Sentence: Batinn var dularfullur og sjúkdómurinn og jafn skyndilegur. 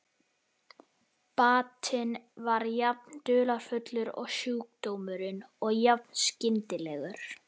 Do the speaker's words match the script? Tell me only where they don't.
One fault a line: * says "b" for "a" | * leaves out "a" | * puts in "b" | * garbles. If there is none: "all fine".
* puts in "jafn"